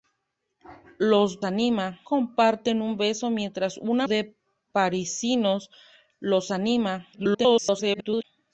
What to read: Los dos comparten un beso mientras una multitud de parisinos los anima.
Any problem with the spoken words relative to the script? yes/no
yes